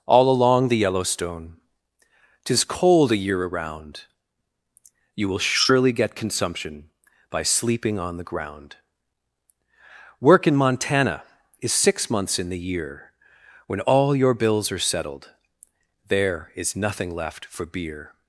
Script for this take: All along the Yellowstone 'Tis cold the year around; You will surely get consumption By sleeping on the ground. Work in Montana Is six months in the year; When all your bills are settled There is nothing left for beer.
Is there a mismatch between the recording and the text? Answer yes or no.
yes